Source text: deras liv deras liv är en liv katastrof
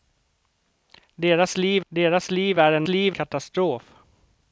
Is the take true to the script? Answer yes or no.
yes